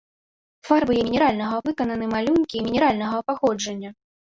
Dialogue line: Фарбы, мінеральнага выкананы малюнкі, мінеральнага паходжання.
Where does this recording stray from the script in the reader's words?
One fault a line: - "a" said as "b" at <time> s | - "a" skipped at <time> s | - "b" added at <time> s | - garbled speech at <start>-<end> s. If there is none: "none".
none